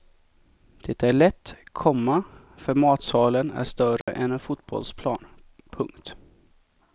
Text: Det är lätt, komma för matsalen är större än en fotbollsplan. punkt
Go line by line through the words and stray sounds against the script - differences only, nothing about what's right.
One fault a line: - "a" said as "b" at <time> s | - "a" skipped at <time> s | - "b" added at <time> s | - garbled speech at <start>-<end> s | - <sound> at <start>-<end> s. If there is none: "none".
- dropout at 4.0-4.1 s